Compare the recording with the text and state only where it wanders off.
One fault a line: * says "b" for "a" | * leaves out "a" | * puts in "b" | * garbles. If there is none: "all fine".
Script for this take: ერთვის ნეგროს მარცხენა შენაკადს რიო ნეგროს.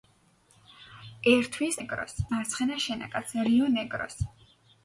all fine